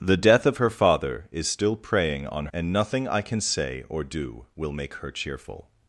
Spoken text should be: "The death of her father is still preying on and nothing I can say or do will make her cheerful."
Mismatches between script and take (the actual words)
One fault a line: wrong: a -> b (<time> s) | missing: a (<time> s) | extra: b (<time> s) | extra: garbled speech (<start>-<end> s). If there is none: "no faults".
no faults